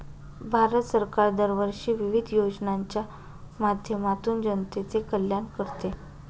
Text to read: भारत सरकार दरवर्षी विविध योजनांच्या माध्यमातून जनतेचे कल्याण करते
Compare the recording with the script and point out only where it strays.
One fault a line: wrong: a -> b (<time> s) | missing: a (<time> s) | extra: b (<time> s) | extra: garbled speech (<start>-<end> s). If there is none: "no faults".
no faults